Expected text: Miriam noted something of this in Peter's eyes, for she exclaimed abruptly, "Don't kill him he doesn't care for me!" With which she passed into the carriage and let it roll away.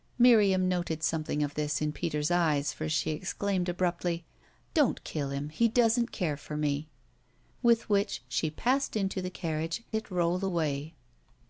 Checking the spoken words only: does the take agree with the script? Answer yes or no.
no